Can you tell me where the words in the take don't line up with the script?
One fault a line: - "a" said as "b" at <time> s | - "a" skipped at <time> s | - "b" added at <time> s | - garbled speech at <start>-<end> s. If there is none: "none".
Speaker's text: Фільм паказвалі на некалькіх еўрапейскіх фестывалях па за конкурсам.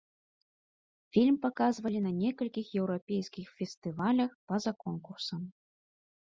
none